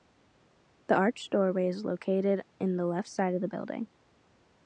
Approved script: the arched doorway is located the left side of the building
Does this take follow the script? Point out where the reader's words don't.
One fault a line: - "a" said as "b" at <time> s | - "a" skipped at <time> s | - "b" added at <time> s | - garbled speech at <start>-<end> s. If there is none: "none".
- "in" added at 2.6 s